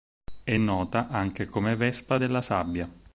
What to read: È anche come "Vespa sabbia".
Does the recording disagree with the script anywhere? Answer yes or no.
yes